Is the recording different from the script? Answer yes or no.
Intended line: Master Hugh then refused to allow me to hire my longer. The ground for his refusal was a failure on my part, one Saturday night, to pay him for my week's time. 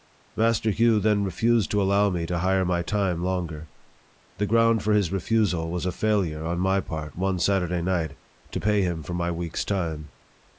yes